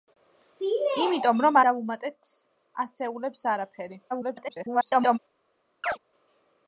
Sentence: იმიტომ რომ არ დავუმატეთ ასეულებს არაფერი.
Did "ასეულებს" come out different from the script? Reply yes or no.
no